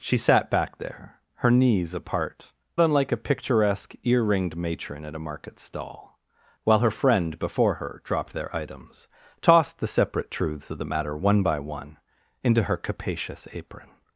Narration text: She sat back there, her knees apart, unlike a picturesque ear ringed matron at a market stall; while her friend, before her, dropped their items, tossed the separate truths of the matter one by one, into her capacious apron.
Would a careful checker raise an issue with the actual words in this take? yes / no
no